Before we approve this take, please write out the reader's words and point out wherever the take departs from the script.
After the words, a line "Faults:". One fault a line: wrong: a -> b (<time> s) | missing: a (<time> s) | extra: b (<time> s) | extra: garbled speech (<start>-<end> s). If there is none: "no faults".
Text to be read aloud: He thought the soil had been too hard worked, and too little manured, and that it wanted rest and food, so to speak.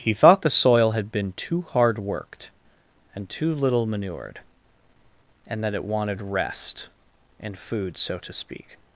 He thought the soil had been too hard worked, and too little manured, and that it wanted rest and food, so to speak.
Faults:
no faults